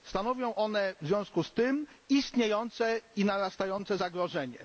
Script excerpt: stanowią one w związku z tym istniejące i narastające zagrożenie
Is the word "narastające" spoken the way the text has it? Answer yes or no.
yes